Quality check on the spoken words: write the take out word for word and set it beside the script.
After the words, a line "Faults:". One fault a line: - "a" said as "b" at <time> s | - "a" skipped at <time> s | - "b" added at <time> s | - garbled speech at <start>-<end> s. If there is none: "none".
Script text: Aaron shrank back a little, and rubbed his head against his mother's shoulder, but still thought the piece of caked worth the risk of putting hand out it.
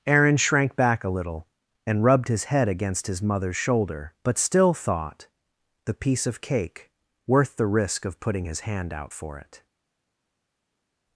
Aaron shrank back a little, and rubbed his head against his mother's shoulder, but still thought the piece of cake worth the risk of putting his hand out for it.
Faults:
- "caked" said as "cake" at 6.4 s
- "his" added at 8.4 s
- "for" added at 9.1 s